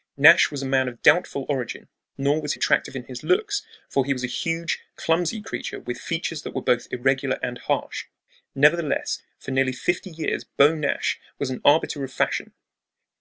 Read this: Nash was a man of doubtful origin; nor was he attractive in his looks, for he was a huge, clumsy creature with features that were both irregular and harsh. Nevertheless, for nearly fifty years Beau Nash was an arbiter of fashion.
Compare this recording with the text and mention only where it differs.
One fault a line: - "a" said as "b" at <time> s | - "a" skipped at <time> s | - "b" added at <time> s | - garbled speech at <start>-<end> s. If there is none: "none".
- "he" skipped at 2.5 s